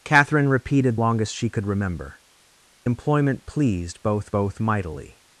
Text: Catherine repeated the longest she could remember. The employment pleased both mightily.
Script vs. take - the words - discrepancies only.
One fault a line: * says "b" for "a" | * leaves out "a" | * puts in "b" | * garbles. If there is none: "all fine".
* leaves out "the"
* leaves out "The"
* puts in "both"